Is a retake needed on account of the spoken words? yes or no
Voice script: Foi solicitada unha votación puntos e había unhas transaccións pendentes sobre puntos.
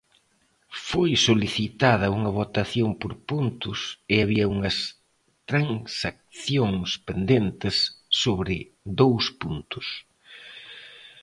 yes